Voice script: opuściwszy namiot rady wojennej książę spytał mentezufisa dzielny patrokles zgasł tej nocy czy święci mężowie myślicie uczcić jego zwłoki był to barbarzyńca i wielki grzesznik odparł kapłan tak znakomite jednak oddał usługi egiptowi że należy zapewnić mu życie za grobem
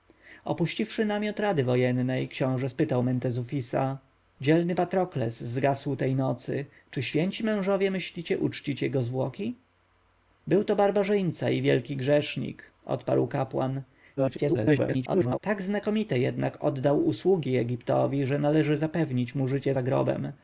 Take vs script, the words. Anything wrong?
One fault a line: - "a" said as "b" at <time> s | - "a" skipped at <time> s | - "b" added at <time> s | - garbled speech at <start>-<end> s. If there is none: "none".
- garbled speech at 14.2-15.4 s